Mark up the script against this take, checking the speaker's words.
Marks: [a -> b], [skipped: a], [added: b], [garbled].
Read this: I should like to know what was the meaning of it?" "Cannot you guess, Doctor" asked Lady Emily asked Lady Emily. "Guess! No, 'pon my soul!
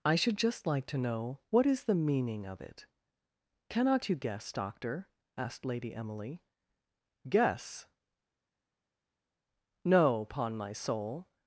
I should [added: just] like to know what [was -> is] the meaning of it?" "Cannot you guess, Doctor" asked Lady Emily [skipped: asked Lady Emily.] "Guess! No, 'pon my soul!